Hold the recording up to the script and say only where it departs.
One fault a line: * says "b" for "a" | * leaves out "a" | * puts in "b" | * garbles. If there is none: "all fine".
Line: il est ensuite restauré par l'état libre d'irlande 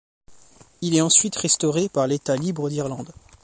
all fine